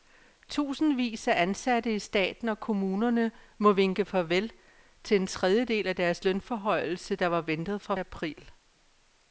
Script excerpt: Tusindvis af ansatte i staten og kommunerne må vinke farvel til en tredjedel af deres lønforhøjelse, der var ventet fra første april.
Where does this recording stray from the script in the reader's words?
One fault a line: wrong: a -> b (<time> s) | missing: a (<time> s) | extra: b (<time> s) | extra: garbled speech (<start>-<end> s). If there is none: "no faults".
missing: første (8.0 s)